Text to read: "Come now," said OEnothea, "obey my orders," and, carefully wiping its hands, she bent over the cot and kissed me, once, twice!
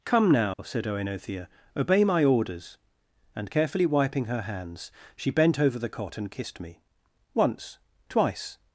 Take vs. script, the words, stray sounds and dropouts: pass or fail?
fail